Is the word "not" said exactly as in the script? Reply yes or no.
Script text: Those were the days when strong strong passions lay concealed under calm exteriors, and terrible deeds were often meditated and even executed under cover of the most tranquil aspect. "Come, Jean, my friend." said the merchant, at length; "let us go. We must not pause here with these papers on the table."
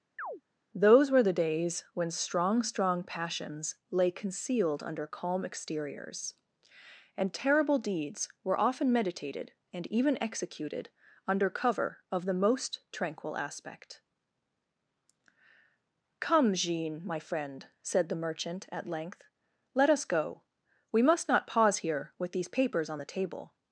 yes